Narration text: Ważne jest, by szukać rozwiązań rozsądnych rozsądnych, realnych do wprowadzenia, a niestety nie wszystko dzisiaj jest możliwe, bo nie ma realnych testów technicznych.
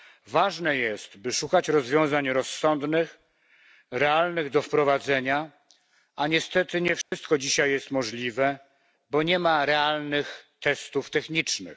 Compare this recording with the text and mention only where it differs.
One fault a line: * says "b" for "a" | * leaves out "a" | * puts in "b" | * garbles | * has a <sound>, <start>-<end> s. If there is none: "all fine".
* leaves out "rozsądnych"
* has a dropout, 7.0-7.1 s